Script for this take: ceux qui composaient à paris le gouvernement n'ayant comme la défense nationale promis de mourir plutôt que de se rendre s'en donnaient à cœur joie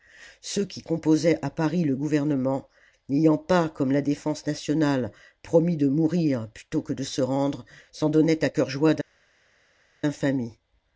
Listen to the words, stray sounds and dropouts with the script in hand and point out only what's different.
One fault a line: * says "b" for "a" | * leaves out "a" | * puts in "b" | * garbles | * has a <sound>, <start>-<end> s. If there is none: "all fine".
* puts in "pas"